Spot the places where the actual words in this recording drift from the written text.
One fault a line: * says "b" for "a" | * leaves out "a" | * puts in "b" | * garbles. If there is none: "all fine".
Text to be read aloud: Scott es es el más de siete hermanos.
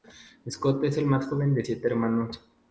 * leaves out "es"
* puts in "joven"